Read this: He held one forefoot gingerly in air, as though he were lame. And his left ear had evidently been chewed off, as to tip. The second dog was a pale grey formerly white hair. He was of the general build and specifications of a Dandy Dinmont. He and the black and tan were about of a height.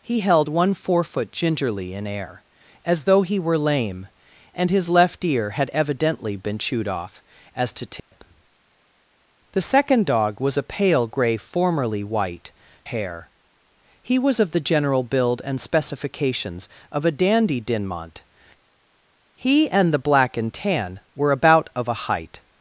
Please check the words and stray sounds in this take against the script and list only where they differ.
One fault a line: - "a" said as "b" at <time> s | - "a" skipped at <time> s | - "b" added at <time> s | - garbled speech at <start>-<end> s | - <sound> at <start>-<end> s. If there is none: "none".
- dropout at 8.0-8.1 s